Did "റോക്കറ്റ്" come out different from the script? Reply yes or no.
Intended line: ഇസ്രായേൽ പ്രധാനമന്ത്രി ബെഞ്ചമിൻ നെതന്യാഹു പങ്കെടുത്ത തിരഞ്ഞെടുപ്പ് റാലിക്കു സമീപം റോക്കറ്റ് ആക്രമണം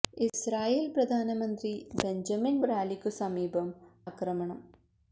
yes